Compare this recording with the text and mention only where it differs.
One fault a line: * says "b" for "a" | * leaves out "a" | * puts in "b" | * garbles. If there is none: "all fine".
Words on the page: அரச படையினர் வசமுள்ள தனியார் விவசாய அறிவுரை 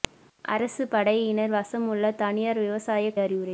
all fine